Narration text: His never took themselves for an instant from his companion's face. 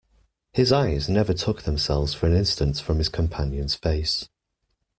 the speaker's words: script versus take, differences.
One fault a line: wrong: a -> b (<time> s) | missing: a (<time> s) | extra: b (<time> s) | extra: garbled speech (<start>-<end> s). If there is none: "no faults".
extra: eyes (0.7 s)